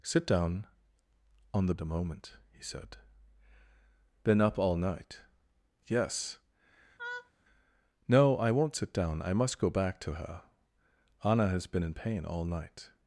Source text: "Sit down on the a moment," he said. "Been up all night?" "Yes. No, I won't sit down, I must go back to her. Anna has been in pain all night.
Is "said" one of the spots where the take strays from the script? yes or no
no